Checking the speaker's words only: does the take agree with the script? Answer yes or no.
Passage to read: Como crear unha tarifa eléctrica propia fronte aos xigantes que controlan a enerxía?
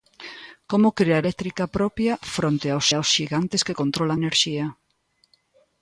no